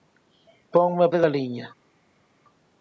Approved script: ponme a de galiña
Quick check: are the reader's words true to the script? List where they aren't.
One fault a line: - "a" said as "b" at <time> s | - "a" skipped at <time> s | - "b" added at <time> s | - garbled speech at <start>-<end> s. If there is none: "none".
none